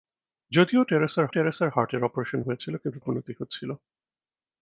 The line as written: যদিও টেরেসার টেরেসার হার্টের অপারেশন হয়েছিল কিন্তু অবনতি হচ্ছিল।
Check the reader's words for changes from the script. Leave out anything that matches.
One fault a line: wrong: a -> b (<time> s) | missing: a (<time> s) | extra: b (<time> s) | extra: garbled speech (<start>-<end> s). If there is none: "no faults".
no faults